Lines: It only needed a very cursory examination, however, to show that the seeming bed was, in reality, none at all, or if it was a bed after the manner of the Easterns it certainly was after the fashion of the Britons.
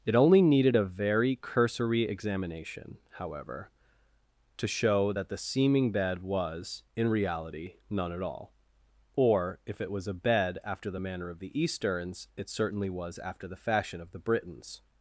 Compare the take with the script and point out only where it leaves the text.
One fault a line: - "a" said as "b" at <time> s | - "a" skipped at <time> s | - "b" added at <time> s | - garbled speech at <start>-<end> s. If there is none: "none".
none